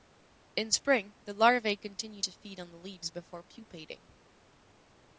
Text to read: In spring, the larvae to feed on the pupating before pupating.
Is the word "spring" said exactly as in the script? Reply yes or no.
yes